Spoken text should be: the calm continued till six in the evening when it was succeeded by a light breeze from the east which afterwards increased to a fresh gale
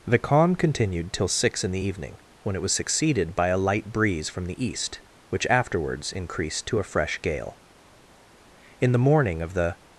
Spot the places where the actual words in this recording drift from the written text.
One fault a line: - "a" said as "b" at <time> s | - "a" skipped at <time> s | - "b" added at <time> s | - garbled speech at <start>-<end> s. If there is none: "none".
- "in the morning of the" added at 8.8 s